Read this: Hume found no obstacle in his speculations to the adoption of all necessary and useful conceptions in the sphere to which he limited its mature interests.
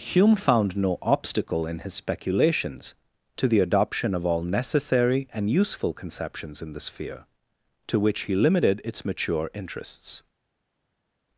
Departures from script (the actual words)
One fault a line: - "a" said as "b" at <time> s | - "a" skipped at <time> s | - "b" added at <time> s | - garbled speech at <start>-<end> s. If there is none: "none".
none